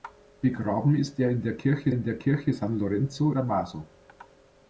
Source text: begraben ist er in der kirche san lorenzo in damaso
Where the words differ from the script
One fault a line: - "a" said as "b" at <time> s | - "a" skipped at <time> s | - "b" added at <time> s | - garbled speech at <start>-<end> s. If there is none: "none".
- "in der kirche" added at 1.9 s
- "in" skipped at 3.3 s